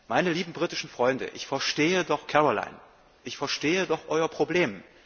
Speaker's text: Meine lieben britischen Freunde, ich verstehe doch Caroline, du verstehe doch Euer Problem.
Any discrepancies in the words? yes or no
yes